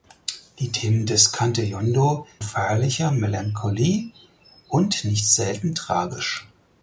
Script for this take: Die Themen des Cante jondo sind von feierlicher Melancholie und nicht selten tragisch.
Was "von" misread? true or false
true